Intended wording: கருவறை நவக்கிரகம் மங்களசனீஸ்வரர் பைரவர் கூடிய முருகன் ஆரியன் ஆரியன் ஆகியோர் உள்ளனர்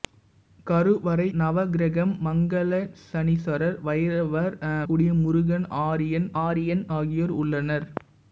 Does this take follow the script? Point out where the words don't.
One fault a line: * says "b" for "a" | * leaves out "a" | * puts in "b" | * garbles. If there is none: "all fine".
all fine